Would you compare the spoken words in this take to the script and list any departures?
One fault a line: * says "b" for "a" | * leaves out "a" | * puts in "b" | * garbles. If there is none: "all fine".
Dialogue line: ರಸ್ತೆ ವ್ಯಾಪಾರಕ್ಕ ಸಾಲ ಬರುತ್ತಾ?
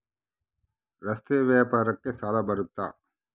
all fine